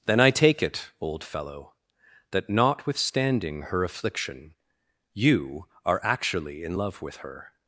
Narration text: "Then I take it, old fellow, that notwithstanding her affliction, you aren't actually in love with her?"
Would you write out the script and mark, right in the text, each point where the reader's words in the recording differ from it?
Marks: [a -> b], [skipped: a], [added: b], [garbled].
"Then I take it, old fellow, that notwithstanding her affliction, you [aren't -> are] actually in love with her?"